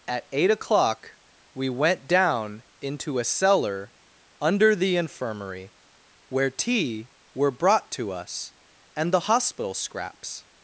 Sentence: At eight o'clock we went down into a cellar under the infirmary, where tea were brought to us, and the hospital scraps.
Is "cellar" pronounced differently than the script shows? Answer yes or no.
no